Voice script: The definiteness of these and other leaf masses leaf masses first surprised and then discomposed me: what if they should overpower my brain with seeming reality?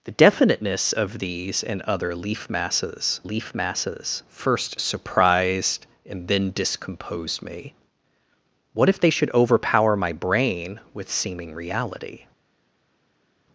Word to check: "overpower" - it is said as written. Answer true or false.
true